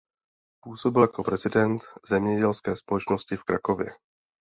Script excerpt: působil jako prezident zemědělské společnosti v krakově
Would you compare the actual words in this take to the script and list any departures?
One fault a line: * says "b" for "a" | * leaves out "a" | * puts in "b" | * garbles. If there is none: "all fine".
all fine